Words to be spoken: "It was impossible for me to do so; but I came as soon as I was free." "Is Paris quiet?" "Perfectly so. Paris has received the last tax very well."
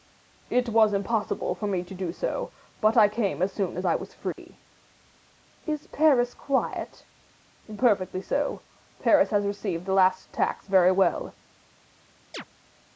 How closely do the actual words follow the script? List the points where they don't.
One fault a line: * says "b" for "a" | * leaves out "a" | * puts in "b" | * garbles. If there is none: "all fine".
all fine